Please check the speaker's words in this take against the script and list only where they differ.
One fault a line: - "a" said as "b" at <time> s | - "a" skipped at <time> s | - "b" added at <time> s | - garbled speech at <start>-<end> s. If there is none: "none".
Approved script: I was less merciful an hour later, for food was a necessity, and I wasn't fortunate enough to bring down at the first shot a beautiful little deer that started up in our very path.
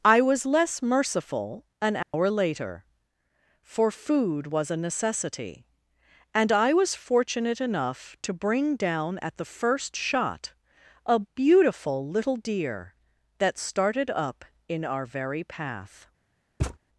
- "wasn't" said as "was" at 6.7 s